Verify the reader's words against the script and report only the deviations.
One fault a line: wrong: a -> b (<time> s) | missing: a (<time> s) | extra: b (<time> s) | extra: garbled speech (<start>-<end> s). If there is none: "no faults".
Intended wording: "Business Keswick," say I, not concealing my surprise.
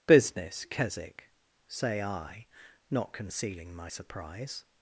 no faults